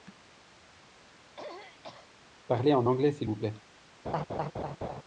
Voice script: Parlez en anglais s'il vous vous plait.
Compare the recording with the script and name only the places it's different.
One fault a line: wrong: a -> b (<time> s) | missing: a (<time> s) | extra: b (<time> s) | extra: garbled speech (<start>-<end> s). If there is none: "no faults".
missing: vous (3.4 s)